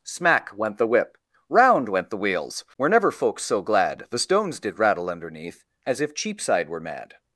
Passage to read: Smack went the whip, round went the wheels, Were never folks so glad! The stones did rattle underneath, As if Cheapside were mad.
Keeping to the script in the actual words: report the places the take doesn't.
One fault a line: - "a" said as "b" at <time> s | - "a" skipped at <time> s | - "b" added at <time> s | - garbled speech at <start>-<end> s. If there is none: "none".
none